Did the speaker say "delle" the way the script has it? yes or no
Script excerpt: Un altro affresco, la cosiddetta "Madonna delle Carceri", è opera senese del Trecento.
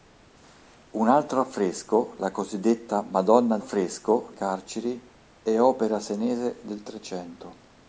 no